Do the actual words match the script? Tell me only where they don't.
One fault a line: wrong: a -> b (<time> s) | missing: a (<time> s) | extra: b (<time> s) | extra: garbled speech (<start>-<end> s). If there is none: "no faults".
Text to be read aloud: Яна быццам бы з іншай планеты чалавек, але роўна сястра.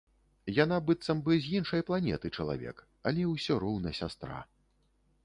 extra: ўсё (3.3 s)